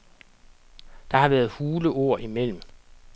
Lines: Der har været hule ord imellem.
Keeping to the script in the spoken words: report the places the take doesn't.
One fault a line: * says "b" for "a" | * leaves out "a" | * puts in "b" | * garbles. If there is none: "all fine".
all fine